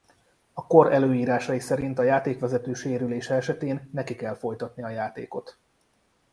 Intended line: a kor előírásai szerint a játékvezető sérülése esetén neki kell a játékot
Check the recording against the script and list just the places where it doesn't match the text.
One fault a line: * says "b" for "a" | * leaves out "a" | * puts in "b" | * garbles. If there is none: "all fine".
* puts in "folytatni"